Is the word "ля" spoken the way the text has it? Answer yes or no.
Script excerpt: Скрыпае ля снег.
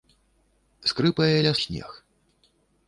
yes